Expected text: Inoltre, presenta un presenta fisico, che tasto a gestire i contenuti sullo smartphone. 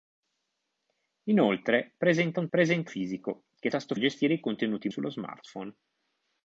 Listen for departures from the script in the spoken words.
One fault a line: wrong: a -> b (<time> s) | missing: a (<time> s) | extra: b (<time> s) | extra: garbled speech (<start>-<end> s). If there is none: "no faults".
no faults